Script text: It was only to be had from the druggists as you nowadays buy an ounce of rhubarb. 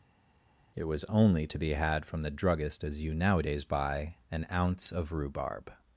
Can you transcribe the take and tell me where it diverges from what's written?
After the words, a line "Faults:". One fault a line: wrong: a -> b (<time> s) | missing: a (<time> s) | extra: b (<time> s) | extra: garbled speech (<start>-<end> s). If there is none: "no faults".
It was only to be had from the druggist as you nowadays buy an ounce of rhubarb.
Faults:
wrong: druggists -> druggist (2.3 s)